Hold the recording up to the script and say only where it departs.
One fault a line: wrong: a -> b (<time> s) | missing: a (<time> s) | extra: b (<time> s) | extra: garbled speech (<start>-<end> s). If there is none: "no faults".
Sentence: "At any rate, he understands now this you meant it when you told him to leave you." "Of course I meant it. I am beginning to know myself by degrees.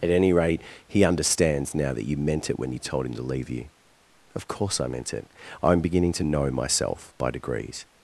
wrong: this -> that (1.9 s)